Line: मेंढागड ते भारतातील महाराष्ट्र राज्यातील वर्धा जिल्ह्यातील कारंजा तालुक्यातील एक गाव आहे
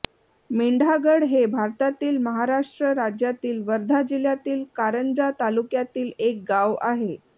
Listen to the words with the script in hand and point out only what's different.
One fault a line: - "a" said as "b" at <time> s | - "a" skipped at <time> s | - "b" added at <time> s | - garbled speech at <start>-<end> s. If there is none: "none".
- "ते" said as "हे" at 1.2 s